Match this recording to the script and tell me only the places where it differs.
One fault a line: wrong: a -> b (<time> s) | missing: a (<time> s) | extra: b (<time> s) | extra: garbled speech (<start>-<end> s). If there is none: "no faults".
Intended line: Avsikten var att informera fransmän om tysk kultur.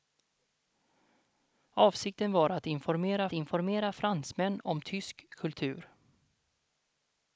extra: informera (3.3 s)